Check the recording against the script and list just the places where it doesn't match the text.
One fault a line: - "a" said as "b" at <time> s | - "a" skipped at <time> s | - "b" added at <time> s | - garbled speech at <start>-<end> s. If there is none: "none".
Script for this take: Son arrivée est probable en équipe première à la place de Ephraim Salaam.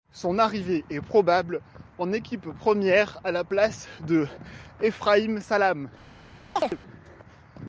none